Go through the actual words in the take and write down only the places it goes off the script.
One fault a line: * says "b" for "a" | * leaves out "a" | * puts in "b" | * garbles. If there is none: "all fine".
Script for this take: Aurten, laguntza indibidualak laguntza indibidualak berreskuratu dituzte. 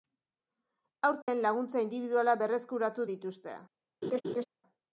* leaves out "laguntza indibidualak"